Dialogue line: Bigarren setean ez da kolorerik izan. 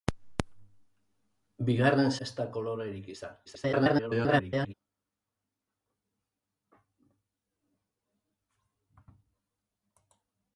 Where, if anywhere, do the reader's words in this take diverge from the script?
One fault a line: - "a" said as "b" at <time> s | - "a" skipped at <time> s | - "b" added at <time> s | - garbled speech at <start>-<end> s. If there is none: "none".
- "setean" skipped at 2.1 s
- garbled speech at 3.4-4.7 s